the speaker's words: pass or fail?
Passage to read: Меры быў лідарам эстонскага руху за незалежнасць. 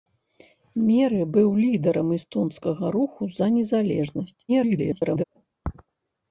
fail